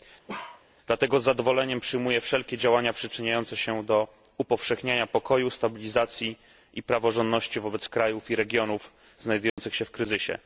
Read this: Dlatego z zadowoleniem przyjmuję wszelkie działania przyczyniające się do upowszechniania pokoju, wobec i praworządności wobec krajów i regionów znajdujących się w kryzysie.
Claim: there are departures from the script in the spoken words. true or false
true